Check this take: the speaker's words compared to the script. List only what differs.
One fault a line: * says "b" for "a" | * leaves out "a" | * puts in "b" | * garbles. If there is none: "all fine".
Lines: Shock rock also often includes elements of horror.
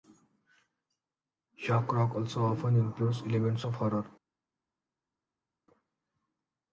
all fine